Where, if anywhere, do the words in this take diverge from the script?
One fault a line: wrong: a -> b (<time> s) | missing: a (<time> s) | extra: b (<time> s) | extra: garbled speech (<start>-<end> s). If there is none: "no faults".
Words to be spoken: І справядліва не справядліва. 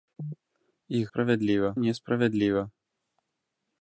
no faults